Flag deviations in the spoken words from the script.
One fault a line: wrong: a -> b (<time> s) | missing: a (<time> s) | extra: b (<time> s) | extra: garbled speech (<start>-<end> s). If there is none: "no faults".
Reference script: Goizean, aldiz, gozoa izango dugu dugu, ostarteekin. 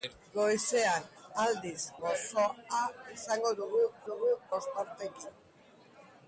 no faults